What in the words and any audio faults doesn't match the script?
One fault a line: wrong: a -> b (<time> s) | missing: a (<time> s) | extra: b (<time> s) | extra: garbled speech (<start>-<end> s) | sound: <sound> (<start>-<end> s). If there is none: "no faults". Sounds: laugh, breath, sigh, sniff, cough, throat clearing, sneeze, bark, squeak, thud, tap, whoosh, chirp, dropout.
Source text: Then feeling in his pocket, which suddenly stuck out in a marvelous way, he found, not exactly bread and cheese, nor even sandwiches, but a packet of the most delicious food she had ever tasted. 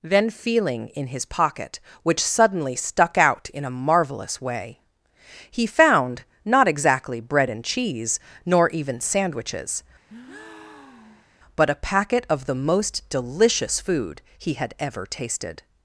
sound: breath (10.1-11.3 s)
wrong: she -> he (14.4 s)